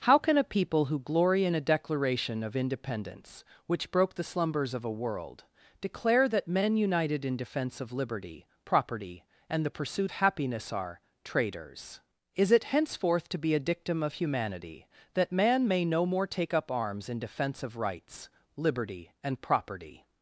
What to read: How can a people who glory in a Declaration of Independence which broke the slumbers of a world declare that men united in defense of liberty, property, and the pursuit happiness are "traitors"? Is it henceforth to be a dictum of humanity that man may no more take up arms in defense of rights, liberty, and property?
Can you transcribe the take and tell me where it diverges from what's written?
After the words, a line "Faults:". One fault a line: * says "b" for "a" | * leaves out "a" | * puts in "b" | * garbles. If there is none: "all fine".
How can a people who glory in a Declaration of Independence which broke the slumbers of a world declare that men united in defense of liberty, property, and the pursuit happiness are "traitors"? Is it henceforth to be a dictum of humanity that man may no more take up arms in defense of rights, liberty, and property?
Faults:
all fine